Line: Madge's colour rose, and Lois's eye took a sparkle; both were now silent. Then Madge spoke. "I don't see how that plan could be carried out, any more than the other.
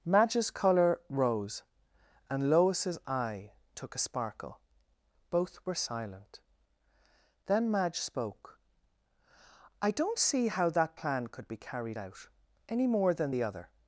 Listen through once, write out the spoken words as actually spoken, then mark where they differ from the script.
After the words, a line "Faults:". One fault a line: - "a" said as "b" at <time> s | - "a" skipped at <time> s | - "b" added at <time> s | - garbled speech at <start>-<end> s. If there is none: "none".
Madge's colour rose, and Lois's eye took a sparkle; both were silent. Then Madge spoke. "I don't see how that plan could be carried out, any more than the other.
Faults:
- "now" skipped at 5.8 s